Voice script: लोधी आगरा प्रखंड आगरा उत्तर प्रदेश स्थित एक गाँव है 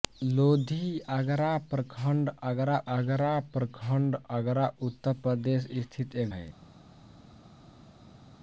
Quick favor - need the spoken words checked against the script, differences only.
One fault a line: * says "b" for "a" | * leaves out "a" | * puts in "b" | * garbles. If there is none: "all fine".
* puts in "आगरा प्रखंड आगरा"
* leaves out "गाँव"